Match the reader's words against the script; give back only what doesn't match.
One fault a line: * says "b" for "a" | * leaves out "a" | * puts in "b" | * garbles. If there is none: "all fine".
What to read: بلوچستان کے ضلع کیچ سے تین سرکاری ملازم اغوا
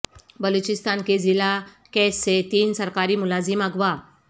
all fine